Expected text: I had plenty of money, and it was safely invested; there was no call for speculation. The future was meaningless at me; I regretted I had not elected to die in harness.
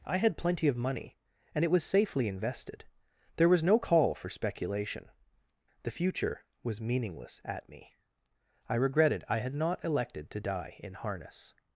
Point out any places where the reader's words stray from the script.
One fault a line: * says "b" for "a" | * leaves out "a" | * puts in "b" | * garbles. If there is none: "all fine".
all fine